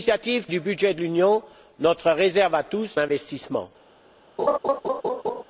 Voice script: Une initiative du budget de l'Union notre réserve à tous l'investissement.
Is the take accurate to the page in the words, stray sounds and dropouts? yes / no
no